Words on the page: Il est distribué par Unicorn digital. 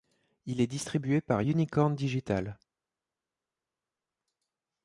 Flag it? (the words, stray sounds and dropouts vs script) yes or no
no